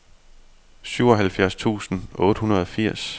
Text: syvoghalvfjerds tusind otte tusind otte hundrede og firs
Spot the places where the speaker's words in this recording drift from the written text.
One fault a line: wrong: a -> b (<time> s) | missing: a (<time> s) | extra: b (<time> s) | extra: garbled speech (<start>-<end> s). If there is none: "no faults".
missing: tusind otte (2.4 s)